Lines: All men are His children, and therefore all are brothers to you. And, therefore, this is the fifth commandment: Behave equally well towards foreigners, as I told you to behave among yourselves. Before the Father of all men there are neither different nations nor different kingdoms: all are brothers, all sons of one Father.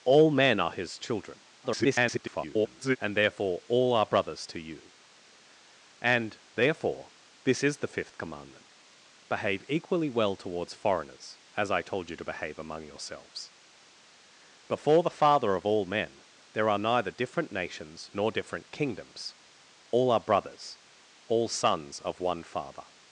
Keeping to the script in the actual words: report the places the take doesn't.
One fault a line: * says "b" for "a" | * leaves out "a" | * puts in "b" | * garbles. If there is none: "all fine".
* garbles